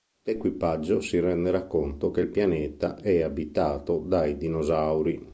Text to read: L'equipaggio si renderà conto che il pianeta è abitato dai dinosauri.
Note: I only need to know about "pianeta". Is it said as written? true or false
true